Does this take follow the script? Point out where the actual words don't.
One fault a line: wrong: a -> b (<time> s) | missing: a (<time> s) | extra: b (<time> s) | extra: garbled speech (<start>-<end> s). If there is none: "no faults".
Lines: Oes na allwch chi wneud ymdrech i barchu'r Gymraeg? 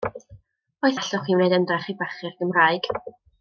no faults